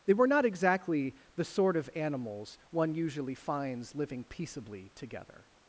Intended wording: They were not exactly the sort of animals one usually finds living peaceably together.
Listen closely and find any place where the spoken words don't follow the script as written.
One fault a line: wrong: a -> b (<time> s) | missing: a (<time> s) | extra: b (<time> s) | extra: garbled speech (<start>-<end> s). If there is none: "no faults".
no faults